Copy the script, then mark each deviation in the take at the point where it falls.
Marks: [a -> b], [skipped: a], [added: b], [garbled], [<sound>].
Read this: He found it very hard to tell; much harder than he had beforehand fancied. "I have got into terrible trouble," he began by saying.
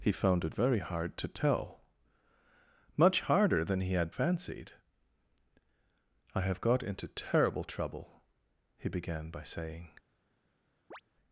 He found it very hard to tell; much harder than he had [skipped: beforehand] fancied. "I have got into terrible trouble," he began by saying. [chirp]